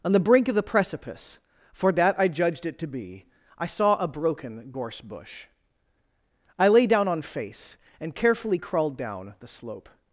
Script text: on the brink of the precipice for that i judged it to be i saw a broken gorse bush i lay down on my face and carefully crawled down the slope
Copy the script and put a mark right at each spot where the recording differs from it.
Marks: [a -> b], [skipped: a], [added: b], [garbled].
on the brink of the precipice for that i judged it to be i saw a broken gorse bush i lay down on [skipped: my] face and carefully crawled down the slope